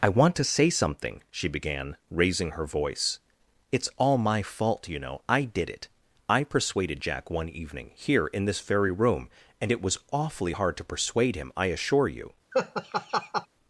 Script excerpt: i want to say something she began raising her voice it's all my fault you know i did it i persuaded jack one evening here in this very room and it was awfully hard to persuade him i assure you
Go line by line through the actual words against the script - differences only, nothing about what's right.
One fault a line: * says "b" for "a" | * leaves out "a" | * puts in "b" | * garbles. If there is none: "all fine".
all fine